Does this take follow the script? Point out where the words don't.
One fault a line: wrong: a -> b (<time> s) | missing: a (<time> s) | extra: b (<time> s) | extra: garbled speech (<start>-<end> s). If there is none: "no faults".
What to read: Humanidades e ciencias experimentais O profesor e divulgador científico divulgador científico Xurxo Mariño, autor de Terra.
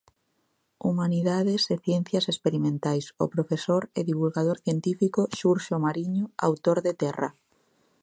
missing: divulgador científico (5.2 s)